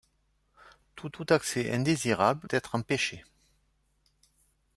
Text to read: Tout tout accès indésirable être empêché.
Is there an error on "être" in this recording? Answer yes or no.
no